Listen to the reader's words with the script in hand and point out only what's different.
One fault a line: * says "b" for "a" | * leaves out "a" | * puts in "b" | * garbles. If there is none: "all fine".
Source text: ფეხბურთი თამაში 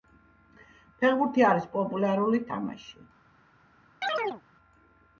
* puts in "არის პოპულარული"